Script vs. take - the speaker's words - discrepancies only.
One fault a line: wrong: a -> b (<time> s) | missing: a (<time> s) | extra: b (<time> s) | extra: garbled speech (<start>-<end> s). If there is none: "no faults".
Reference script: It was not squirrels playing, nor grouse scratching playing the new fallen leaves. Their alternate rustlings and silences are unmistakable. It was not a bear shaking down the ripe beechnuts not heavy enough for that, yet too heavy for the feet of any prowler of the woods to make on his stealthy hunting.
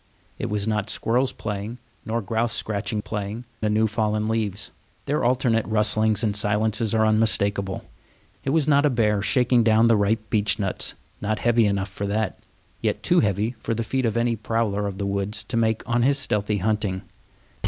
no faults